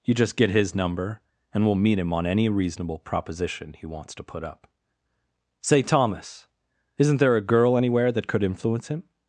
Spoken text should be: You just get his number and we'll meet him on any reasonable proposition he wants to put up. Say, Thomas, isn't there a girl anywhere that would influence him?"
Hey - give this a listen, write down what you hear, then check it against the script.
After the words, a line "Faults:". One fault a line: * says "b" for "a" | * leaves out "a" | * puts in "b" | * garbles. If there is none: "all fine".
You just get his number and we'll meet him on any reasonable proposition he wants to put up. Say, Thomas, isn't there a girl anywhere that could influence him?"
Faults:
* says "could" for "would"